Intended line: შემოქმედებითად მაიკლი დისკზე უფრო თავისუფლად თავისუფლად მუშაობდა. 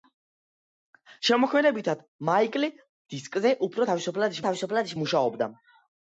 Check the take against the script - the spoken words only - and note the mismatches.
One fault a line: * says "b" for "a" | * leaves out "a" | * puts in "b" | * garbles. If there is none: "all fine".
all fine